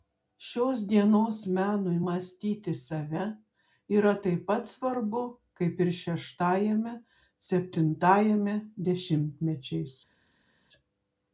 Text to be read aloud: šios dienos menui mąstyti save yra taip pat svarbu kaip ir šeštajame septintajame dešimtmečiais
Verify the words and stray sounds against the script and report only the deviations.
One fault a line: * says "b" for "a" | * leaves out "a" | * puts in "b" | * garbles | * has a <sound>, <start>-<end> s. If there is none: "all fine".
all fine